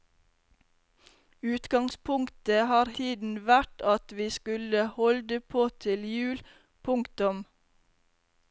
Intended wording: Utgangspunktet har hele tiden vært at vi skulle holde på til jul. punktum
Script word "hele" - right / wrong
wrong